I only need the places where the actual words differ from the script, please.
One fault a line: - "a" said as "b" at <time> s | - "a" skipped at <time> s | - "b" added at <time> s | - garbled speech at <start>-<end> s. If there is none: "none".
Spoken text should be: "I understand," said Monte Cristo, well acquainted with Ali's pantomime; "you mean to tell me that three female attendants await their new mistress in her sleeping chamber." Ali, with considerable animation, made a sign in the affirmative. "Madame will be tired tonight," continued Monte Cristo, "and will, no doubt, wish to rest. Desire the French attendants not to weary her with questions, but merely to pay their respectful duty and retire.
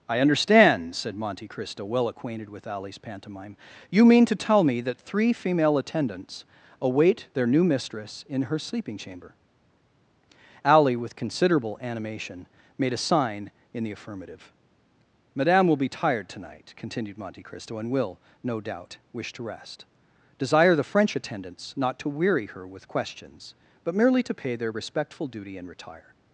none